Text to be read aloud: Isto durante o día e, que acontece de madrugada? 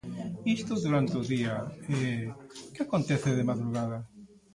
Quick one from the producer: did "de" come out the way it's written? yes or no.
yes